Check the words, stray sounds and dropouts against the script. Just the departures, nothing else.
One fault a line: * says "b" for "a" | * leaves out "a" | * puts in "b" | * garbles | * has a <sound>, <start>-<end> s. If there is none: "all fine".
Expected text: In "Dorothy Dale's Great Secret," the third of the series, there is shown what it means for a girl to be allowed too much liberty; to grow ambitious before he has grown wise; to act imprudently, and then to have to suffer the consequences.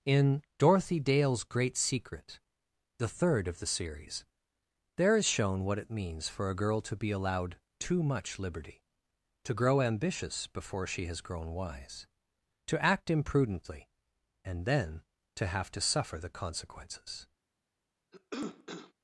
* says "she" for "he"
* has a cough, 18.1-18.9 s